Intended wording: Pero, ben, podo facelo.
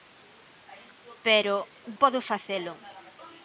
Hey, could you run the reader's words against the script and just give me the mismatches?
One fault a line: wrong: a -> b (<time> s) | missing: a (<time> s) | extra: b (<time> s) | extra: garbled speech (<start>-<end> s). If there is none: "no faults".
missing: ben (1.6 s)